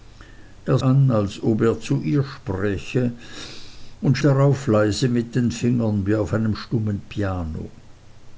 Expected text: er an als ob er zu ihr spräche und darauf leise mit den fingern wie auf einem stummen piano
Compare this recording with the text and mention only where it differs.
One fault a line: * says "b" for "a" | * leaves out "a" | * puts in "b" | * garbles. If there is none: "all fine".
all fine